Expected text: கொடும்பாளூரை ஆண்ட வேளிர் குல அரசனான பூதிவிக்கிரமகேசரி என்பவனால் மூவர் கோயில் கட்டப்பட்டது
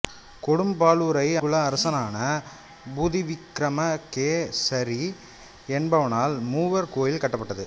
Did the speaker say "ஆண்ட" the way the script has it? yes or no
no